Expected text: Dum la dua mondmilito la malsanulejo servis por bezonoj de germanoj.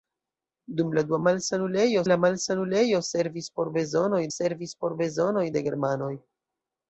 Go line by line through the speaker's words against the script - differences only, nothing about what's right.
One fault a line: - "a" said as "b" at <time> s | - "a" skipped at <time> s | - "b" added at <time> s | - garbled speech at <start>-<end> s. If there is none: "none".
- "mondmilito" said as "malsanulejo" at 1.3 s
- "servis por bezonoj" added at 4.4 s